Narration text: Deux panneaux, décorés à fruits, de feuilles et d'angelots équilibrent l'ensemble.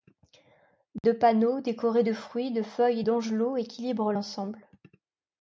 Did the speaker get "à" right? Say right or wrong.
wrong